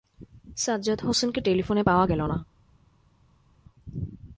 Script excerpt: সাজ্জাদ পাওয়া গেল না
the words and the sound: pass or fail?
fail